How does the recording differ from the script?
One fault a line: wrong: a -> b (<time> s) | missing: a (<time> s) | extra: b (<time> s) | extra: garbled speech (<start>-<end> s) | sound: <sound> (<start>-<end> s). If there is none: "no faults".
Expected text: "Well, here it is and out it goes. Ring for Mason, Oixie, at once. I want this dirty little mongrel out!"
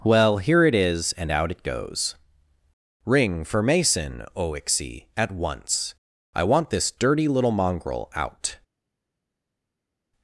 no faults